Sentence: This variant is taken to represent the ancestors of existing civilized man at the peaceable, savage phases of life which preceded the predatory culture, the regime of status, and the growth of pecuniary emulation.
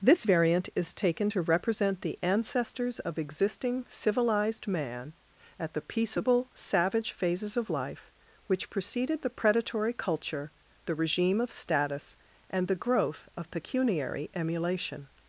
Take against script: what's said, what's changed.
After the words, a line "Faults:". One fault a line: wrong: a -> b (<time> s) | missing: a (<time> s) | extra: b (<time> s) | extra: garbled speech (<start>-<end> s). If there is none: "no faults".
This variant is taken to represent the ancestors of existing civilized man at the peaceable, savage phases of life which preceded the predatory culture, the regime of status, and the growth of pecuniary emulation.
Faults:
no faults